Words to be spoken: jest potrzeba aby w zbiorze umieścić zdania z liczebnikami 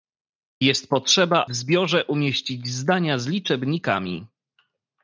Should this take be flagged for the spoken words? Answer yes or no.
yes